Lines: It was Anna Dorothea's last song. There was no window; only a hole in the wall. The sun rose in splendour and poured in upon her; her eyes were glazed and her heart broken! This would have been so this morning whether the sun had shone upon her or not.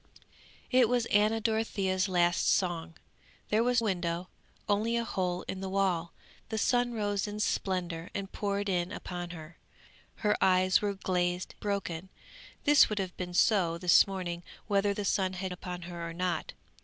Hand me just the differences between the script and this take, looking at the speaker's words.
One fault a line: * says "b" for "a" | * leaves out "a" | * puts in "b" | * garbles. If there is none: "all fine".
* leaves out "no"
* leaves out "and her heart"
* leaves out "shone"